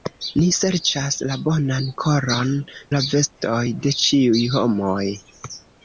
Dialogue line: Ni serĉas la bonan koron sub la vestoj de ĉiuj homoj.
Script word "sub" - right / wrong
wrong